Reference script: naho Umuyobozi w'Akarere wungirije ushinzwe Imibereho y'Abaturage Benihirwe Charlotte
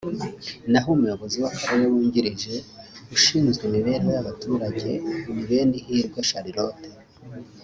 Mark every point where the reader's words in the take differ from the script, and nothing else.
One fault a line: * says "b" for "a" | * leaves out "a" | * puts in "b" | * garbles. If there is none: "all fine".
* puts in "ni"